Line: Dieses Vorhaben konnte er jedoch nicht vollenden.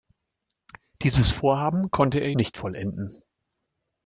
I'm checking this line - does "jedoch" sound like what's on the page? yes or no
no